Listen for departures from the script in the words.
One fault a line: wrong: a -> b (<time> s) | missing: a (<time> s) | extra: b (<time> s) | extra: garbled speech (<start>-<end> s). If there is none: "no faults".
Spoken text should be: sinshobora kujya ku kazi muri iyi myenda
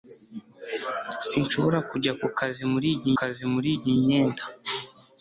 extra: kazi muri iyi (3.2 s)